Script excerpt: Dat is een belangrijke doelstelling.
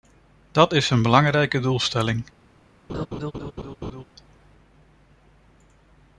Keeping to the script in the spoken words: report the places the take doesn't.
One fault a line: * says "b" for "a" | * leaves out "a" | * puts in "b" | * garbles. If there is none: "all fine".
all fine